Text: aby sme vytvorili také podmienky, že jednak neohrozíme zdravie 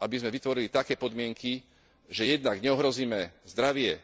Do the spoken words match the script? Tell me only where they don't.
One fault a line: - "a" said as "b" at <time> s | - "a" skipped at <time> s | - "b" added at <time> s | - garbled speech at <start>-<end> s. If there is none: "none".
none